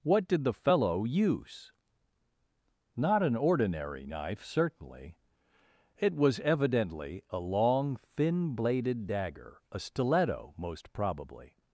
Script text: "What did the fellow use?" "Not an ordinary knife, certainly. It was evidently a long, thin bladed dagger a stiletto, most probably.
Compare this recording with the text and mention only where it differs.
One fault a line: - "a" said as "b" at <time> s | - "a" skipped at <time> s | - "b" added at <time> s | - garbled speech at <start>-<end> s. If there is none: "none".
none